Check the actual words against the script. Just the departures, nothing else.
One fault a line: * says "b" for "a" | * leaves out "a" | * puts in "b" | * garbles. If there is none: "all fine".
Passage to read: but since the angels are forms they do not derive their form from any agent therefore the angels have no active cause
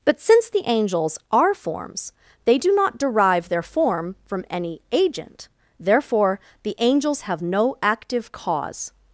all fine